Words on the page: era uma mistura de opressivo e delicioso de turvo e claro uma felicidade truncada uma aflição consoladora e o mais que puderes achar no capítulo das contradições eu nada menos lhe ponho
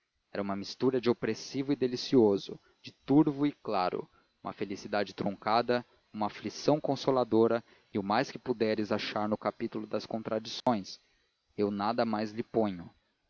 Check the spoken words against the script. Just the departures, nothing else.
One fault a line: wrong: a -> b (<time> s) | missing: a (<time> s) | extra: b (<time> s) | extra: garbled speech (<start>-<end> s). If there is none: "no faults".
wrong: menos -> mais (12.1 s)